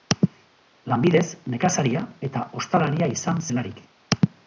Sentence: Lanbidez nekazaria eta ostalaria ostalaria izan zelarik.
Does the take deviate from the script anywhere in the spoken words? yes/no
yes